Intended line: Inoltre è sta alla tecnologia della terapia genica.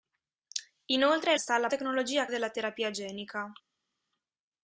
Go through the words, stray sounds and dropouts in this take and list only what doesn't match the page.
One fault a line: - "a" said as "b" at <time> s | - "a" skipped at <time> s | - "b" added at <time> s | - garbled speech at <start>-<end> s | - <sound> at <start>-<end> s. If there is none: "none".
none